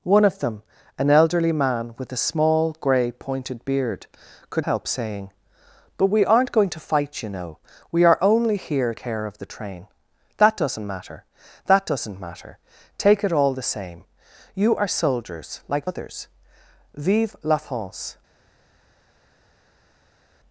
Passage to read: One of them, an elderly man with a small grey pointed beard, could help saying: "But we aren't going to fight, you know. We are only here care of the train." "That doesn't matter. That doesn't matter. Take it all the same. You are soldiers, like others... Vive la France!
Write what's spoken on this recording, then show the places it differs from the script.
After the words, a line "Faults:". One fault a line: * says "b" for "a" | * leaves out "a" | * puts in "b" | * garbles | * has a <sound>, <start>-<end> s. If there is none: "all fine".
One of them, an elderly man with a small grey pointed beard, could help saying: "But we aren't going to fight, you know. We are only here care of the train." "That doesn't matter. That doesn't matter. Take it all the same. You are soldiers, like others... Vive la France!
Faults:
all fine